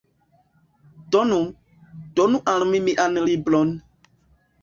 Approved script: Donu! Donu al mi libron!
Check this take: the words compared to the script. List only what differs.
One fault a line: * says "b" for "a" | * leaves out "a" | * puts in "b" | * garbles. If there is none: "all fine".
* puts in "mian"